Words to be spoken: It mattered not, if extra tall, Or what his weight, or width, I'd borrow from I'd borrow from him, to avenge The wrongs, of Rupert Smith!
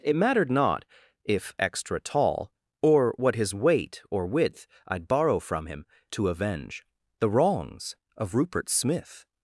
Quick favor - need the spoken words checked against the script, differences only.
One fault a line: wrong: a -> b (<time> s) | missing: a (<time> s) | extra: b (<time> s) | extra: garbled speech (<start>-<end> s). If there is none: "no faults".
missing: I'd borrow from (5.7 s)